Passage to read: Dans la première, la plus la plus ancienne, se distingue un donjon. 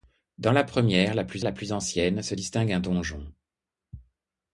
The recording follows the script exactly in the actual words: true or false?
true